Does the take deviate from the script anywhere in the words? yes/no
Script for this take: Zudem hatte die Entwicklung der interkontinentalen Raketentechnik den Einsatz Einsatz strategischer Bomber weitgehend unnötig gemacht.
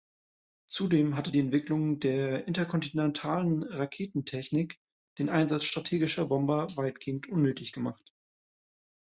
yes